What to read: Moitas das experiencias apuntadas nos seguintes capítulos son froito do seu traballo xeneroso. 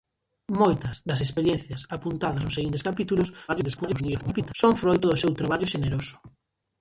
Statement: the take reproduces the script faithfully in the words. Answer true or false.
false